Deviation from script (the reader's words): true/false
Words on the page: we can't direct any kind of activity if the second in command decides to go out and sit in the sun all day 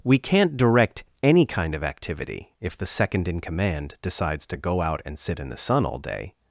false